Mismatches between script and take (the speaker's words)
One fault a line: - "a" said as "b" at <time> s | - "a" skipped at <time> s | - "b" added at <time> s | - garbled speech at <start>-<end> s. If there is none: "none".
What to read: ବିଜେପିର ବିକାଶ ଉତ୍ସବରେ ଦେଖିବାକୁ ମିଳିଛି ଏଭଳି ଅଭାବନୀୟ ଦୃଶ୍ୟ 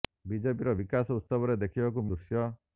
- "ମିଳିଛି ଏଭଳି ଅଭାବନୀୟ" skipped at 2.0 s